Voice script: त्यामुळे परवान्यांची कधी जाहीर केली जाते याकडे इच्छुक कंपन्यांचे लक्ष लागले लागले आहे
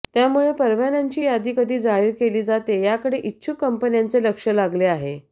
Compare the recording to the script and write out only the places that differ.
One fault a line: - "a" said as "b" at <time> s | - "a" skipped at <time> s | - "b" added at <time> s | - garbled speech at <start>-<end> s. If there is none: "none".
- "यादी" added at 1.2 s
- "लागले" skipped at 4.8 s